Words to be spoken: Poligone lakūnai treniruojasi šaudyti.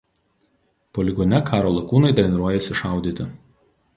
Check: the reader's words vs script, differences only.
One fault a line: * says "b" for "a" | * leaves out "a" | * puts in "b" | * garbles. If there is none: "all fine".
* puts in "karo"